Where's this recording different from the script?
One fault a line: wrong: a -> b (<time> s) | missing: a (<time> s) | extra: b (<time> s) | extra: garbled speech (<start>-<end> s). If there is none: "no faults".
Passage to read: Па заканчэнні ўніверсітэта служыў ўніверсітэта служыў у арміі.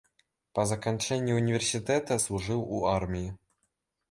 missing: ўніверсітэта служыў (2.6 s)